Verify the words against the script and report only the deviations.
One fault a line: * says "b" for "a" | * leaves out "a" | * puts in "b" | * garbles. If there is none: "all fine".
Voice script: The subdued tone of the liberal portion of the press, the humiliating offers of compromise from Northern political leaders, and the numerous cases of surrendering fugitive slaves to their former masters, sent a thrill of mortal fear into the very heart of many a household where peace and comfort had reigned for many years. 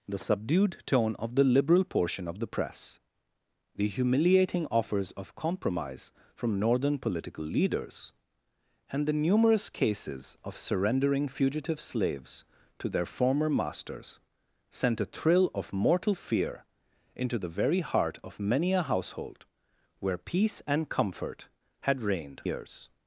* leaves out "for many"